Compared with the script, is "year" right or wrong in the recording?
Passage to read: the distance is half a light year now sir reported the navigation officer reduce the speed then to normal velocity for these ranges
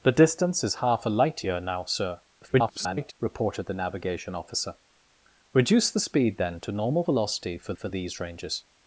right